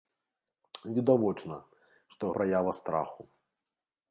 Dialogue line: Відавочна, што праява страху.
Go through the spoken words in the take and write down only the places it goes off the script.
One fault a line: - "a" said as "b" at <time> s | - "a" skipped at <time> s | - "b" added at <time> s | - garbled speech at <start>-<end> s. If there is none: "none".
none